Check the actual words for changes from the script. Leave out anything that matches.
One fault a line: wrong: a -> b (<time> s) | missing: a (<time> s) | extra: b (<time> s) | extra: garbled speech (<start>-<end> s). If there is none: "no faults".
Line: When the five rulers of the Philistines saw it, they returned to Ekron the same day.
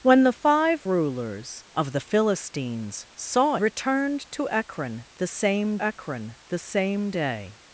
wrong: it they returned to -> returned to Ekron the same (3.6 s)